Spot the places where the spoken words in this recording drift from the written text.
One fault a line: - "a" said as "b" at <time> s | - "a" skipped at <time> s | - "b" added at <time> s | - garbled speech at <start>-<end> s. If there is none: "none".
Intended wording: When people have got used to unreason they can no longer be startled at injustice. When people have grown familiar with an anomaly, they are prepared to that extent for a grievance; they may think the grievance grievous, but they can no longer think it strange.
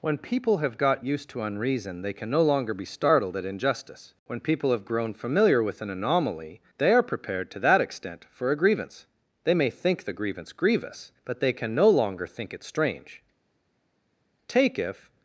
- "Take if" added at 14.5 s